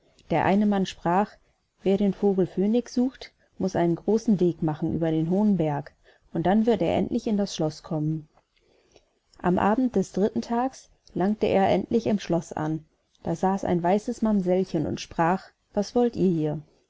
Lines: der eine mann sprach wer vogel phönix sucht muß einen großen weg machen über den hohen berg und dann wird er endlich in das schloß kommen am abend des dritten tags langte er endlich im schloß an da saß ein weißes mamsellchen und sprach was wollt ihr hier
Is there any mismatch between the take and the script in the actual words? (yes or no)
yes